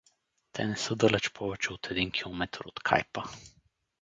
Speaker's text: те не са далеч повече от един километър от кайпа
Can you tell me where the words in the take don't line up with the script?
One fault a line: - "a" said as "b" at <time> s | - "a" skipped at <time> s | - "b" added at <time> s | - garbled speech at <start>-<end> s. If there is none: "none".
none